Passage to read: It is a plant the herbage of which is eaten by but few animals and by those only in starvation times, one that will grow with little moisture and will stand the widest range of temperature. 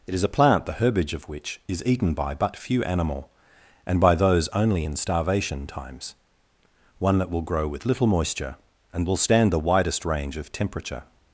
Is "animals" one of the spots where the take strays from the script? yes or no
yes